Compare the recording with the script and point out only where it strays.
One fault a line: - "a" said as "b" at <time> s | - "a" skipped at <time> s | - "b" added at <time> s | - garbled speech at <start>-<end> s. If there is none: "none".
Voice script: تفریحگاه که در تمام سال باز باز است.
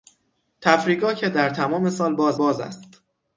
none